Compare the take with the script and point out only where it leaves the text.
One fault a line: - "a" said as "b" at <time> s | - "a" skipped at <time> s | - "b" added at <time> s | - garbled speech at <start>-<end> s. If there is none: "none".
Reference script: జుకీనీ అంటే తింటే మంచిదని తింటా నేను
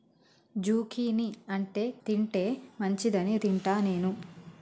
none